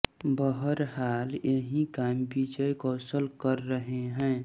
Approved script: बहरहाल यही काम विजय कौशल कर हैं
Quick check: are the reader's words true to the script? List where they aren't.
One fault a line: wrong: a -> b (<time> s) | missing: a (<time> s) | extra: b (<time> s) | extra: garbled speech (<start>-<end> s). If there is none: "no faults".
extra: रहे (3.7 s)